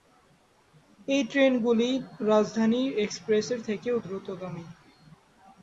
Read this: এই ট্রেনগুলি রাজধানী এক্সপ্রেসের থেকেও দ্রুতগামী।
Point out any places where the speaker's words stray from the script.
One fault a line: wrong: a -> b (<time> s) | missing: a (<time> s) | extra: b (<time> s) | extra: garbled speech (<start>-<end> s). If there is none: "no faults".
no faults